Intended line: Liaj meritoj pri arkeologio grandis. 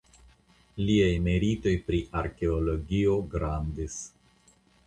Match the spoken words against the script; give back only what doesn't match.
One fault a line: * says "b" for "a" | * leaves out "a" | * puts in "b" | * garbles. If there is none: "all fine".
all fine